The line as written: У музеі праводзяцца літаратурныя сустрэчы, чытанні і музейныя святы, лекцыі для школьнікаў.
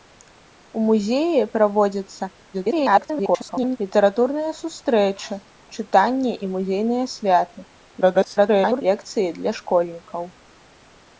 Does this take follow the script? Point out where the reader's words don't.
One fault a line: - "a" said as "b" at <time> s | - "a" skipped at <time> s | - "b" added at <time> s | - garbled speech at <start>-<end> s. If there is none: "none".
- garbled speech at 2.5-3.8 s
- garbled speech at 8.0-8.8 s